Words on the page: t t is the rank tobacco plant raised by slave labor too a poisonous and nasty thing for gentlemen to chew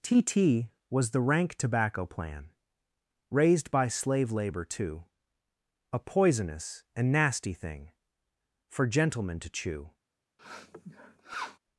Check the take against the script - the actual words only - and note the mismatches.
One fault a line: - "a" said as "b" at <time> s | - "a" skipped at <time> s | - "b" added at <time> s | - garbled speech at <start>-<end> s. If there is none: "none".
- "is" said as "was" at 0.9 s
- "plant" said as "plan" at 2.0 s